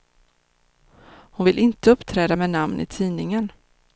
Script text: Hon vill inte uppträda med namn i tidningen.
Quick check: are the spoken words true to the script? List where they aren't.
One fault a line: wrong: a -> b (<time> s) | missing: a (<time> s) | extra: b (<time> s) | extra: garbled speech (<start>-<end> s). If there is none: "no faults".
no faults